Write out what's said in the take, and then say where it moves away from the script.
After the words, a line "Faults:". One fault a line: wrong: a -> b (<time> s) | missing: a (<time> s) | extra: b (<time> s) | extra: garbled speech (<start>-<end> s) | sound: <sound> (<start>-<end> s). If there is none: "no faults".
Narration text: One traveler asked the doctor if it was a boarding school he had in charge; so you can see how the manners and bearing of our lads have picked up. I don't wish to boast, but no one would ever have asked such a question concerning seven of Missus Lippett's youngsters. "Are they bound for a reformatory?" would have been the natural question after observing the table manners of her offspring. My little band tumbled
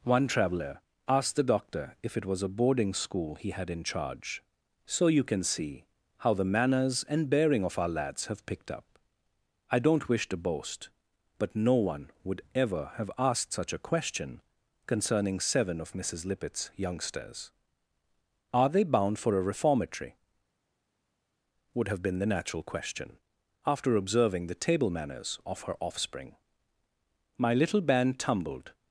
One traveler asked the doctor if it was a boarding school he had in charge; so you can see how the manners and bearing of our lads have picked up. I don't wish to boast, but no one would ever have asked such a question concerning seven of Missus Lippett's youngsters. "Are they bound for a reformatory?" would have been the natural question after observing the table manners of her offspring. My little band tumbled
Faults:
no faults